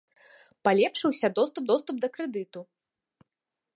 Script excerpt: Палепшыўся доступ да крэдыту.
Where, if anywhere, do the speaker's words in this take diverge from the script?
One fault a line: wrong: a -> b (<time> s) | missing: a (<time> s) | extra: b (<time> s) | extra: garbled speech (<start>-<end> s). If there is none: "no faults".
extra: доступ (1.7 s)